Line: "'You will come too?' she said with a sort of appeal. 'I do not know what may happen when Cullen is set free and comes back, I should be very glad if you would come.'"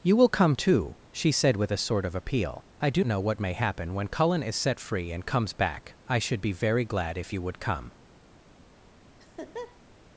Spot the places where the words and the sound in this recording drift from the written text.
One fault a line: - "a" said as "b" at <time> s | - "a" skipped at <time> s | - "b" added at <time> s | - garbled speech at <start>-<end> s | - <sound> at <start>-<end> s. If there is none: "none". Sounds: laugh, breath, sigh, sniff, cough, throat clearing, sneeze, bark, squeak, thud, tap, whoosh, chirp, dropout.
- "not" skipped at 3.0 s
- laugh at 9.2-9.8 s